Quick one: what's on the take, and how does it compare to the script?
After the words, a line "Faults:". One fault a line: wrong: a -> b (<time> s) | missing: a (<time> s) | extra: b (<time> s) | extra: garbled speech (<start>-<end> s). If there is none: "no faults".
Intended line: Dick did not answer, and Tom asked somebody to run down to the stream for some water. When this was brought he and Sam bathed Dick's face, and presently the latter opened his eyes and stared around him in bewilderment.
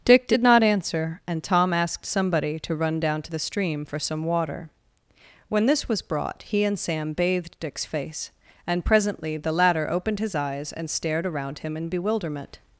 Dick did not answer, and Tom asked somebody to run down to the stream for some water. When this was brought he and Sam bathed Dick's face, and presently the latter opened his eyes and stared around him in bewilderment.
Faults:
no faults